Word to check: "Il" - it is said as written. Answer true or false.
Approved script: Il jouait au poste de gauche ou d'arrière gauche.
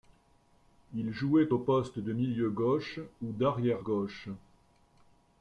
true